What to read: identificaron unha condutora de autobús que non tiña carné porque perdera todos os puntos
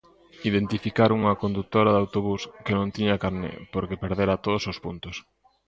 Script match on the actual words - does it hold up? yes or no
yes